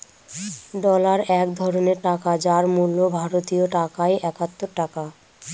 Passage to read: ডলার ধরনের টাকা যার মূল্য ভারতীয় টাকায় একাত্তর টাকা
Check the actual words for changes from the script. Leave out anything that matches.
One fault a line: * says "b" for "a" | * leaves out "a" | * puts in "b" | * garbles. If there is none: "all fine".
* puts in "এক"